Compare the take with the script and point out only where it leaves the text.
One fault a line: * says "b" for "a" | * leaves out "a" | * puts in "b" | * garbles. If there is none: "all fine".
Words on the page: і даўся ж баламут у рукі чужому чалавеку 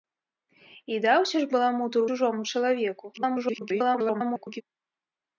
* leaves out "рукі"
* garbles